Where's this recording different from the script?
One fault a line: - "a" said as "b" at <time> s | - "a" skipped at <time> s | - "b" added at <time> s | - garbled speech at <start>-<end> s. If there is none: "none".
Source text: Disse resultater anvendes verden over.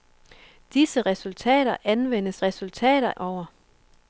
- "verden" said as "resultater" at 2.4 s